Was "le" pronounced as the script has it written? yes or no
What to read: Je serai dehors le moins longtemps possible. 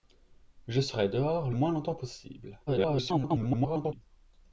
no